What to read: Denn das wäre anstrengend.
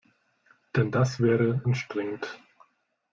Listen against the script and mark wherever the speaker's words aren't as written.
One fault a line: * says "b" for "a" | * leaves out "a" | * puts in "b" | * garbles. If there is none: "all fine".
all fine